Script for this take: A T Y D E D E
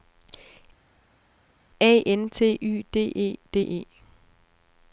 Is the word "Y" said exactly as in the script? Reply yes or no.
yes